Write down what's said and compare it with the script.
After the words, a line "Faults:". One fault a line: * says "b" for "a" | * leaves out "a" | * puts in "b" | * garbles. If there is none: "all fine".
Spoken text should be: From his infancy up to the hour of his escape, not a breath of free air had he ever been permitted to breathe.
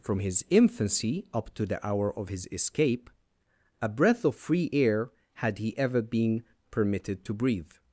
From his infancy up to the hour of his escape, a breath of free air had he ever been permitted to breathe.
Faults:
* leaves out "not"